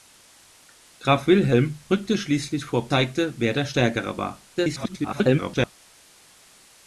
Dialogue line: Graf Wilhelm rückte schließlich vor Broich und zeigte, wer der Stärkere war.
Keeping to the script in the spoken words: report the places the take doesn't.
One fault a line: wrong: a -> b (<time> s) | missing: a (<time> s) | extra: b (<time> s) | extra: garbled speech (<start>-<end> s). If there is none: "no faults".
missing: Broich und (2.9 s)
extra: garbled speech (4.6-5.7 s)